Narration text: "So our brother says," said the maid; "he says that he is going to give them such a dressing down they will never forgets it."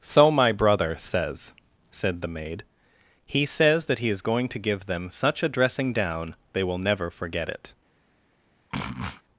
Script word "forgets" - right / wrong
wrong